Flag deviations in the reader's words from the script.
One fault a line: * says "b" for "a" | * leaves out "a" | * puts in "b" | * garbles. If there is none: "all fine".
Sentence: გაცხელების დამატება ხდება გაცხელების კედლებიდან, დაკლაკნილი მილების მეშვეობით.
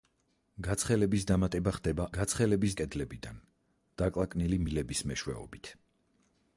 all fine